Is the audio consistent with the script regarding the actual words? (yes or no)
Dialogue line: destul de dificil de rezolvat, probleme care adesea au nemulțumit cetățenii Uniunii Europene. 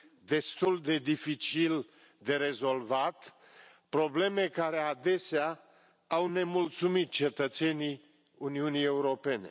yes